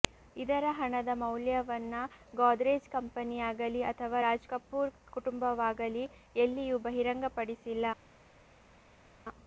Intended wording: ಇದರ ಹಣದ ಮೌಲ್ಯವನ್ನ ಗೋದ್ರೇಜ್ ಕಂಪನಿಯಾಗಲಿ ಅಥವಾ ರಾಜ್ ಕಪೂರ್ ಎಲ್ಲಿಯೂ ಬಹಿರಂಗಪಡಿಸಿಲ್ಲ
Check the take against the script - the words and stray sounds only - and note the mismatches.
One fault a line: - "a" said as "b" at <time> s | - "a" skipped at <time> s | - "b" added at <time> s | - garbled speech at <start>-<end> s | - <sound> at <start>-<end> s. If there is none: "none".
- "ಕುಟುಂಬವಾಗಲಿ" added at 5.1 s